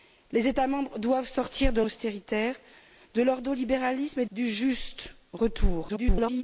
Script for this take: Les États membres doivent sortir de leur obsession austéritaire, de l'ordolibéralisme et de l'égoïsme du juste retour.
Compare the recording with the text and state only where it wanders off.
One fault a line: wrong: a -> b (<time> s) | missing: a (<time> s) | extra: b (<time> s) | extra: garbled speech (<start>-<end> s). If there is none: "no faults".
missing: leur obsession (1.8 s)
missing: de l'égoïsme (4.2 s)
extra: garbled speech (5.9-6.4 s)